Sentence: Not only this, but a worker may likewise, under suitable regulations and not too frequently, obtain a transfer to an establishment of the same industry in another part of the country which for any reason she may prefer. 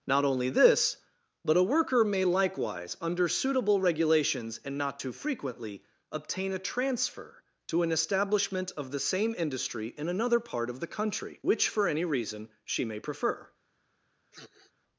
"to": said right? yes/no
yes